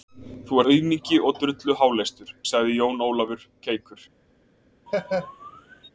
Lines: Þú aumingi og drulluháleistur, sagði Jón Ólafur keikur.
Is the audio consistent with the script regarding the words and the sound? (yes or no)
no